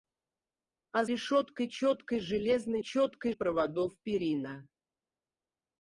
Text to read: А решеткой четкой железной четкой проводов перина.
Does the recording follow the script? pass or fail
pass